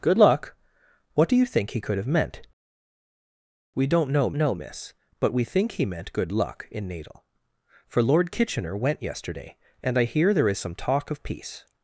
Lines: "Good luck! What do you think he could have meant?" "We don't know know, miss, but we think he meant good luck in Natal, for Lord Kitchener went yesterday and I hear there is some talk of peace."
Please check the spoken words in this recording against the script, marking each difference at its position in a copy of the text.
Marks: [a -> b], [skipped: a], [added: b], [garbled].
"Good luck! What do you think he could have meant?" "We don't know know, miss, but we think he meant good luck in Natal, for Lord Kitchener went yesterday and I hear there is some talk of peace."